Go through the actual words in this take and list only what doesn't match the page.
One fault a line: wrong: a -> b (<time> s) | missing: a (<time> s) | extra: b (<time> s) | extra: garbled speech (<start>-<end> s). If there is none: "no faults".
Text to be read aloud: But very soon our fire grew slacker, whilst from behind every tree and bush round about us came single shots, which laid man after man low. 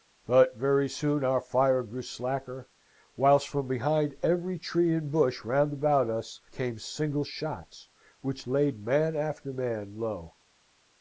no faults